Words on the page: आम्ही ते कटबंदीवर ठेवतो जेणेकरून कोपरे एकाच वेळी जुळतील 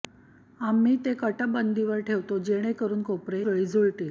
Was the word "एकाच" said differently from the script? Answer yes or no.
yes